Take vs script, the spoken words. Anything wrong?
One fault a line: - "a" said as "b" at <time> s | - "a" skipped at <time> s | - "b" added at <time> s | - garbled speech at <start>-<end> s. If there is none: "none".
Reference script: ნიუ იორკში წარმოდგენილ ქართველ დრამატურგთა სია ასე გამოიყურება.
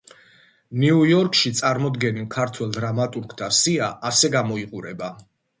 none